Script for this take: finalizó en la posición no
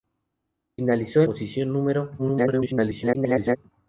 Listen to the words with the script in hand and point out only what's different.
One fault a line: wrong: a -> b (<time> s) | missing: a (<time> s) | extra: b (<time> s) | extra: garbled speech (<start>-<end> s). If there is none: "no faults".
missing: la (1.3 s)
extra: garbled speech (2.2-3.6 s)